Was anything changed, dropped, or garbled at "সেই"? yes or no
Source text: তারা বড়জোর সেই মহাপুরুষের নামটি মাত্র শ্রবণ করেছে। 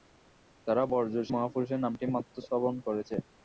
yes